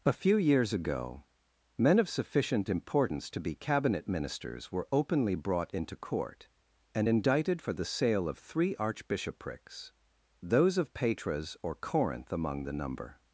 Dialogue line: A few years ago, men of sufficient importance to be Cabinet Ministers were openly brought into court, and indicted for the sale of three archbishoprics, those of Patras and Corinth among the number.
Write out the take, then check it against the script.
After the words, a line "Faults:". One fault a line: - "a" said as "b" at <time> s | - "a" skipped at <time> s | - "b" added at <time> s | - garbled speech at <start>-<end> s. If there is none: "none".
A few years ago, men of sufficient importance to be Cabinet Ministers were openly brought into court, and indicted for the sale of three archbishoprics, those of Patras or Corinth among the number.
Faults:
- "and" said as "or" at 11.6 s